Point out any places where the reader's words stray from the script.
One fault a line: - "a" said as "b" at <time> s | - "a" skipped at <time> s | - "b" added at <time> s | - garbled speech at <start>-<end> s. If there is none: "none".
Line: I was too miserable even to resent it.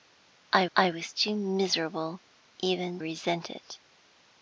- "I" added at 0.7 s
- "to" skipped at 3.0 s